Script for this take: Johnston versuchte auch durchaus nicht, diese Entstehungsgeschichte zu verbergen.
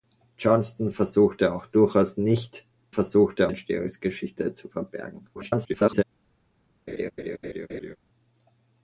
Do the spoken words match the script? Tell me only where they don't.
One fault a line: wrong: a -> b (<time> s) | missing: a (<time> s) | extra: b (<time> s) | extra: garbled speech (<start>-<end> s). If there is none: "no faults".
wrong: diese -> versuchte (2.9 s)
extra: garbled speech (5.4-6.0 s)